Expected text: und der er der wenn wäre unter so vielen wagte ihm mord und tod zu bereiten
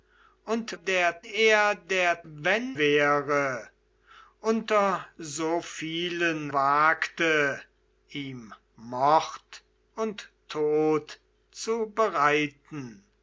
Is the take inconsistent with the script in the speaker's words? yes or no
no